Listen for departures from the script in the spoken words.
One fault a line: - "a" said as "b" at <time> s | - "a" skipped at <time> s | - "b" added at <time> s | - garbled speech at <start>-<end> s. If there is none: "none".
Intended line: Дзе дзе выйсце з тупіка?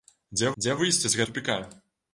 none